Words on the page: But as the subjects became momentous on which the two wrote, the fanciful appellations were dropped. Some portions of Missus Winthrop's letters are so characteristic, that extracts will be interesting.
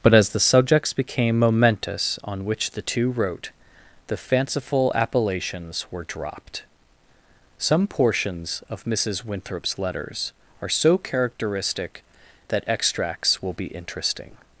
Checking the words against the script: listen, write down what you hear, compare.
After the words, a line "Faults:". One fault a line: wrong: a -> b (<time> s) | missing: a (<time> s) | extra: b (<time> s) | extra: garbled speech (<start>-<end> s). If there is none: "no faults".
But as the subjects became momentous on which the two wrote, the fanciful appellations were dropped. Some portions of Missus Winthrop's letters are so characteristic, that extracts will be interesting.
Faults:
no faults